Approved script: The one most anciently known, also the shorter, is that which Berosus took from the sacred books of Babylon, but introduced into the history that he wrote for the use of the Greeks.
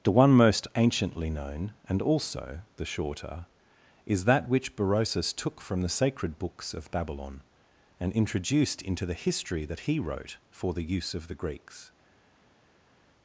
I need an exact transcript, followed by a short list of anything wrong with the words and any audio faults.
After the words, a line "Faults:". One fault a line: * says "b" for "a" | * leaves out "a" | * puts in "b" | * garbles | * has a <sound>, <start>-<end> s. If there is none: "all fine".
The one most anciently known, and also the shorter, is that which Berosus took from the sacred books of Babylon, and introduced into the history that he wrote for the use of the Greeks.
Faults:
* puts in "and"
* says "and" for "but"